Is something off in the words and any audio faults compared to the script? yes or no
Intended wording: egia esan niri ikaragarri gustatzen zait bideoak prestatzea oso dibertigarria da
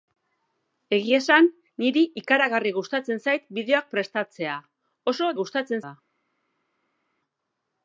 yes